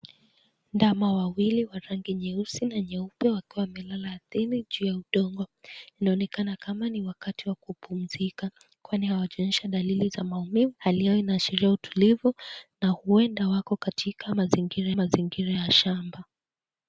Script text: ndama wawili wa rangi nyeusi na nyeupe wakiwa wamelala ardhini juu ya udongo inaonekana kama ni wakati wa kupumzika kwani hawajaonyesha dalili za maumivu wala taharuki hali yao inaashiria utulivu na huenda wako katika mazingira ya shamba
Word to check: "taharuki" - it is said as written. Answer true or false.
false